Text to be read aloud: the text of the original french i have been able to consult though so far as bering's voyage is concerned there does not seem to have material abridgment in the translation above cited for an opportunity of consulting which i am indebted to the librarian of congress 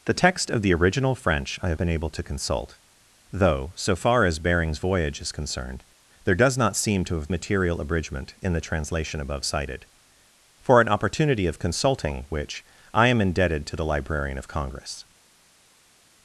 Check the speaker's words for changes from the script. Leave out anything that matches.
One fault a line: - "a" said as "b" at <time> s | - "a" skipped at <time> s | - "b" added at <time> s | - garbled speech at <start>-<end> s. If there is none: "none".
none